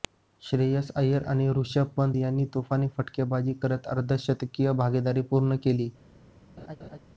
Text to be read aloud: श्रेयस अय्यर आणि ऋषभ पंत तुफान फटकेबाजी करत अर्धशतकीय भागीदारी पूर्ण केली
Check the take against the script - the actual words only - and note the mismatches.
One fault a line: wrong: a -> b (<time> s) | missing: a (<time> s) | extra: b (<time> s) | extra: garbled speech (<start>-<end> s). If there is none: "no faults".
extra: यांनी (2.2 s)